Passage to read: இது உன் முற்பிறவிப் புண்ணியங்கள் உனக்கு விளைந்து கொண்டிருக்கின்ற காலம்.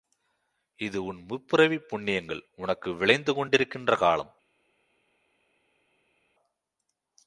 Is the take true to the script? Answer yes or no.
yes